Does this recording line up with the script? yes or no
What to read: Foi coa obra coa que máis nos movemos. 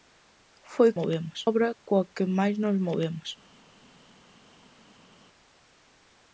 no